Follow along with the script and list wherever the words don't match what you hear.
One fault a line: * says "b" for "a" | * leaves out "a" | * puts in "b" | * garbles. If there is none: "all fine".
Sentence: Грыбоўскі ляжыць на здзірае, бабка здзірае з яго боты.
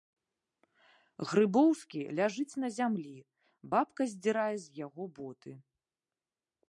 * says "зямлі" for "здзірае"